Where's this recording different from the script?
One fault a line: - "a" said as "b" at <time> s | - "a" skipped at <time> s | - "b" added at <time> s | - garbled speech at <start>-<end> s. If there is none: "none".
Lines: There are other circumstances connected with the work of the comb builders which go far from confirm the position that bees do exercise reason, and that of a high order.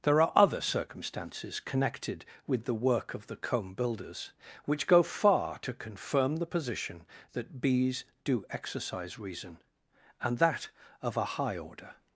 - "from" said as "to" at 5.6 s